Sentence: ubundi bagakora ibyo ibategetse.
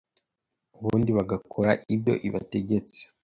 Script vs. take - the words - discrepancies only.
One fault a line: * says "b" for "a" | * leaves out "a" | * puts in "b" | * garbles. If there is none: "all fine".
all fine